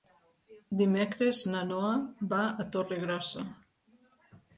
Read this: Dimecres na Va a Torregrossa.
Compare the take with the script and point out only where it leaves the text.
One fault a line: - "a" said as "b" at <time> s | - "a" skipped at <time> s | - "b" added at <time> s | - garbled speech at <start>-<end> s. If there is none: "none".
- "Noa" added at 1.7 s